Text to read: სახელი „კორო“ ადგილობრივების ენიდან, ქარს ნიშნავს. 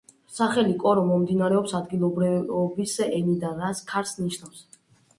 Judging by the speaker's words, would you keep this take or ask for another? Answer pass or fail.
fail